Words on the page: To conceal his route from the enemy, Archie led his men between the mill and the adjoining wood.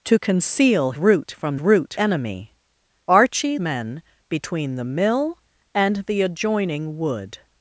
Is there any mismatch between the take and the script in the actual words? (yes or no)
yes